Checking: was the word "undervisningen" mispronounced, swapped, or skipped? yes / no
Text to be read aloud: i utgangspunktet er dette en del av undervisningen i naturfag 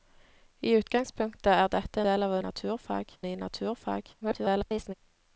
yes